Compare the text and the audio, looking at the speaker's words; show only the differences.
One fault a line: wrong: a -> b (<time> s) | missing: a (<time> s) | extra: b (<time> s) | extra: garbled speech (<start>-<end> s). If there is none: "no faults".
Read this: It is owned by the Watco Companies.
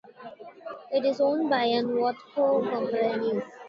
no faults